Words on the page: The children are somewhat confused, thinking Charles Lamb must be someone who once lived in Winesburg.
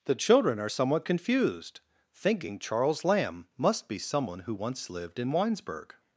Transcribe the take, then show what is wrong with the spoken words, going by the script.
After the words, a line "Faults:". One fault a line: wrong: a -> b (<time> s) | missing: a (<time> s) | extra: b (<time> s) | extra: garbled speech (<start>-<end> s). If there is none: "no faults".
The children are somewhat confused, thinking Charles Lamb must be someone who once lived in Winesburg.
Faults:
no faults